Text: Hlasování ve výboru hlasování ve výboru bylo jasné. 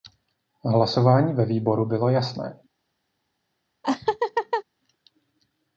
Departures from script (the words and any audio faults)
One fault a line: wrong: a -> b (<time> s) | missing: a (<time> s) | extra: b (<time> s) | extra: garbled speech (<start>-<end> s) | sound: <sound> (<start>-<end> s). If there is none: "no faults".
missing: hlasování ve výboru (1.9 s)
sound: laugh (3.8-4.6 s)